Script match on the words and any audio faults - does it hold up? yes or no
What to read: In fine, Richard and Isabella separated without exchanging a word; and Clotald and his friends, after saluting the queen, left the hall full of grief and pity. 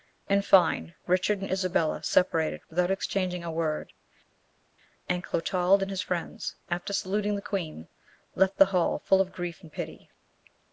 yes